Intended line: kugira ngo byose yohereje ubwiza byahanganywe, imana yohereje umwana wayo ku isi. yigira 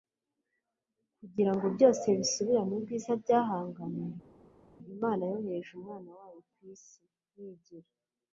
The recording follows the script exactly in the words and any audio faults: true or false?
false